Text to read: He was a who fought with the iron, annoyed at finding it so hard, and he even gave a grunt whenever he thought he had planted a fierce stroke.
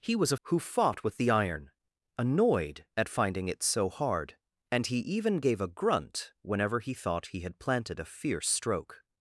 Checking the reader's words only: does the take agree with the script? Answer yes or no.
yes